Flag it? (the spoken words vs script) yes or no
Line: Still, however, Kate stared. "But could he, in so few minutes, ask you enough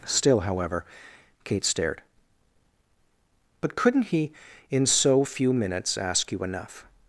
yes